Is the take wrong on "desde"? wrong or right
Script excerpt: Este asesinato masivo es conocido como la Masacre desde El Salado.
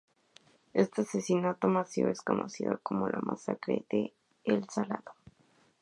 wrong